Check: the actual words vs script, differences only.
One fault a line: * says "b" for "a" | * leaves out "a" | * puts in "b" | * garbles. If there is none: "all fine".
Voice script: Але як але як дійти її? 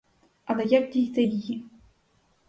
* leaves out "але як"